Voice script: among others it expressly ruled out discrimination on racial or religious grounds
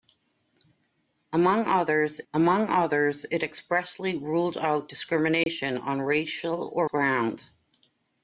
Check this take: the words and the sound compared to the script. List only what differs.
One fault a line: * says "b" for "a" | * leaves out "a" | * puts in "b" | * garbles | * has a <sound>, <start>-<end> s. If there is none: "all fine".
* puts in "among others"
* has a dropout, 5.4-5.5 s
* leaves out "religious"